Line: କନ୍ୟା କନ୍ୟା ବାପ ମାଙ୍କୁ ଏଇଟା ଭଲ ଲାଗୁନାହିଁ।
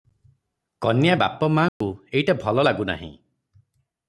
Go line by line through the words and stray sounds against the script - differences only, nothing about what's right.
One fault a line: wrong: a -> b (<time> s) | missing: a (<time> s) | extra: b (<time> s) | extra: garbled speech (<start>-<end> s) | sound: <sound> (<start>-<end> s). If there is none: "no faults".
missing: କନ୍ୟା (1.1 s)
sound: dropout (1.7-1.8 s)